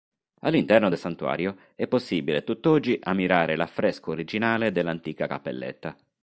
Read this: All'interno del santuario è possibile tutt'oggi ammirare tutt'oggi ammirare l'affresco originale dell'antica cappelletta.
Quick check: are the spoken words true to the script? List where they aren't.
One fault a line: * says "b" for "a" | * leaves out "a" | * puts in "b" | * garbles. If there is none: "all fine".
* leaves out "tutt'oggi ammirare"